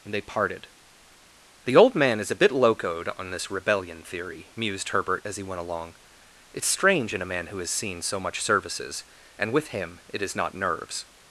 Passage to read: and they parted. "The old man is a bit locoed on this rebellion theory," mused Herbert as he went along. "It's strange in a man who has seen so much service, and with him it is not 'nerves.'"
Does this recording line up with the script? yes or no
no